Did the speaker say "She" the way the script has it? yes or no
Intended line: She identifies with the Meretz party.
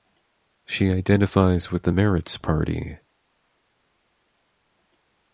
yes